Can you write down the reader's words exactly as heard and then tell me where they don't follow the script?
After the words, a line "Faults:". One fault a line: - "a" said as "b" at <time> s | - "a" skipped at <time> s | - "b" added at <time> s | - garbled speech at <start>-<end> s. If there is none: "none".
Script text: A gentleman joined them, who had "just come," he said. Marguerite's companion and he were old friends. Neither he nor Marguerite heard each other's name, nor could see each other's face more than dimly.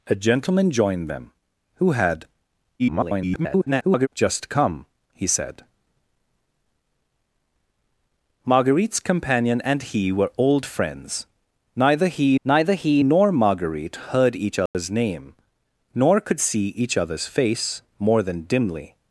A gentleman joined them, who had [garbled] "just come," he said. Marguerite's companion and he were old friends. Neither he neither he nor Marguerite heard each other's name, nor could see each other's face more than dimly.
Faults:
- garbled speech at 2.8-4.1 s
- "neither he" added at 12.4 s